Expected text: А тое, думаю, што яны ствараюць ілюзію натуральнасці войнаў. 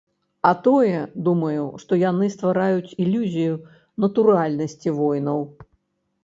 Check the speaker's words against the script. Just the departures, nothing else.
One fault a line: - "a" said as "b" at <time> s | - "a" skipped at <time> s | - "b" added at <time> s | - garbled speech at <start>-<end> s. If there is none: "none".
none